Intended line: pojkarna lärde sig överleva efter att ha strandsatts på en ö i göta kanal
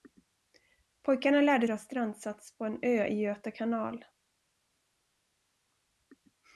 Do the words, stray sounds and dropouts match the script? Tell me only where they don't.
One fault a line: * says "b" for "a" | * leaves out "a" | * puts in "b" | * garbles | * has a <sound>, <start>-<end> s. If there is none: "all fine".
* leaves out "sig överleva efter"